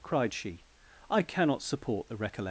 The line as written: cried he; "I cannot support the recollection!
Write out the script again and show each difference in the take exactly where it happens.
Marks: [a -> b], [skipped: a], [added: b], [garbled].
cried [he; -> she] "I cannot support the recollection!